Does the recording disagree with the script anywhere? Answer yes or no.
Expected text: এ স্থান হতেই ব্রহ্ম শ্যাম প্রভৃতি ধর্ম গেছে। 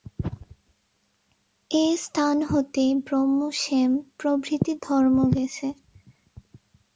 no